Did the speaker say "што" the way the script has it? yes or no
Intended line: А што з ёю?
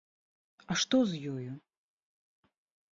yes